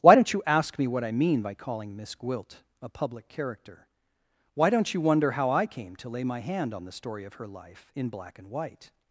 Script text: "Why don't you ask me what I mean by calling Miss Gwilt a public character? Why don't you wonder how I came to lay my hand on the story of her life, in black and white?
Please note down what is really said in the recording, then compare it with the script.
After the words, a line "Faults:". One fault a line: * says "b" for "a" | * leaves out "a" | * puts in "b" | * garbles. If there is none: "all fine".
"Why don't you ask me what I mean by calling Miss Gwilt a public character? Why don't you wonder how I came to lay my hand on the story of her life, in black and white?
Faults:
all fine